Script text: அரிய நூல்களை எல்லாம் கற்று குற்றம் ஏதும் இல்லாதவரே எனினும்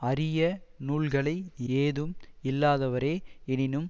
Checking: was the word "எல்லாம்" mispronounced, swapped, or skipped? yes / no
yes